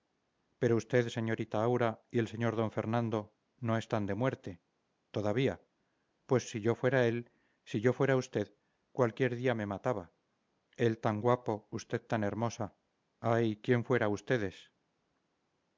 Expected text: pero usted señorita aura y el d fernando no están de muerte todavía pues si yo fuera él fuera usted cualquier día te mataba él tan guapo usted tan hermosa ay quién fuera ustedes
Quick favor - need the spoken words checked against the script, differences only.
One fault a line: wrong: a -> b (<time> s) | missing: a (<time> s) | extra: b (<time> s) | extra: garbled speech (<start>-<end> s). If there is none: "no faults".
extra: sr (2.3 s)
extra: si yo (7.7 s)
wrong: te -> me (9.5 s)